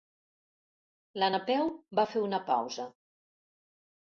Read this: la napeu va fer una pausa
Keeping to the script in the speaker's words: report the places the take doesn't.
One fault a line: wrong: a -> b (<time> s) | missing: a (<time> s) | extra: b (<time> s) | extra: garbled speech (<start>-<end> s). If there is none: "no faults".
no faults